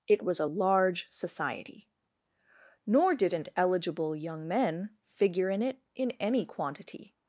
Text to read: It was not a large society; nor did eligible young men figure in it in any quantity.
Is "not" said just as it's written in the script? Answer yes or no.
no